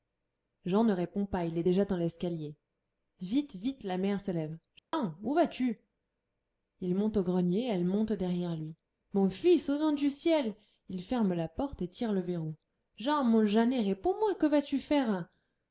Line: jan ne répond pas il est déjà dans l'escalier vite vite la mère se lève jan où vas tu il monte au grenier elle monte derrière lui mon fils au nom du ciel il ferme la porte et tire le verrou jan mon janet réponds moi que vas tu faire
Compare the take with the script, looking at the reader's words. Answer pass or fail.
pass